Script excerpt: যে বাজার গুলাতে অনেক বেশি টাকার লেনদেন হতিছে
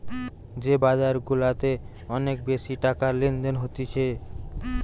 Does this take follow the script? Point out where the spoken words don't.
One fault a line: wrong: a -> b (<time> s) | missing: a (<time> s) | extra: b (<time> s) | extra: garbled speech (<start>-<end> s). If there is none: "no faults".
no faults